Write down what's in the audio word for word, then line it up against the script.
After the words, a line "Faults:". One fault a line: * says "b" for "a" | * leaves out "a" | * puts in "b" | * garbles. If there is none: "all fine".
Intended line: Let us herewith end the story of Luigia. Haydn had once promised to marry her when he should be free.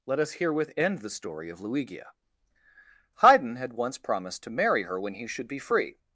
Let us herewith end the story of Luigia. Haydn had once promised to marry her when he should be free.
Faults:
all fine